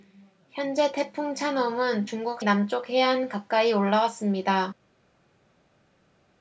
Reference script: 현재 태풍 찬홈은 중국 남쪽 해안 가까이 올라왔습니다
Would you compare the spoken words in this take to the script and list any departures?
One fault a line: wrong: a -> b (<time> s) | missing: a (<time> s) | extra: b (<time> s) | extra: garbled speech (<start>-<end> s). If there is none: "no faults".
no faults